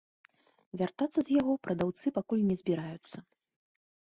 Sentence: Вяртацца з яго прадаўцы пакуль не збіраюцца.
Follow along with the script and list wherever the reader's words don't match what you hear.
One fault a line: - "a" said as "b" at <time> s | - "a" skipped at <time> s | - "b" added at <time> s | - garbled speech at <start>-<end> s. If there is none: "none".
none